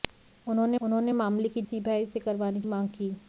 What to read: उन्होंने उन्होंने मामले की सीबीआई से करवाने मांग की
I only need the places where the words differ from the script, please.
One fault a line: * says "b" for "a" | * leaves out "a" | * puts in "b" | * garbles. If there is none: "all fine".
all fine